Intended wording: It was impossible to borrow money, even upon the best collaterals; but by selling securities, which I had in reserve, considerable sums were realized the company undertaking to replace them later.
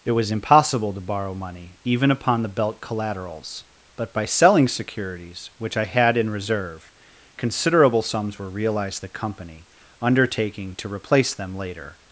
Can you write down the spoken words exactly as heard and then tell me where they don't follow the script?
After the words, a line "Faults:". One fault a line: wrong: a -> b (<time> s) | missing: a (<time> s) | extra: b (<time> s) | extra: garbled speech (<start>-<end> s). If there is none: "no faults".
It was impossible to borrow money, even upon the belt collaterals; but by selling securities, which I had in reserve, considerable sums were realized the company undertaking to replace them later.
Faults:
wrong: best -> belt (2.5 s)